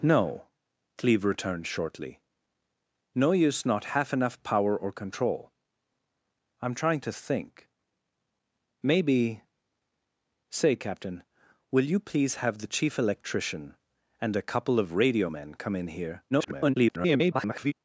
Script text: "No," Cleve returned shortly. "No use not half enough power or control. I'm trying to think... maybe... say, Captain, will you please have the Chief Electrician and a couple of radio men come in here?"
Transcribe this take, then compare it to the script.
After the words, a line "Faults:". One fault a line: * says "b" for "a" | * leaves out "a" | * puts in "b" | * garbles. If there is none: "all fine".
"No," Cleve returned shortly. "No use not half enough power or control. I'm trying to think... maybe... say, Captain, will you please have the Chief Electrician and a couple of radio men come in here?" [garbled]
Faults:
* garbles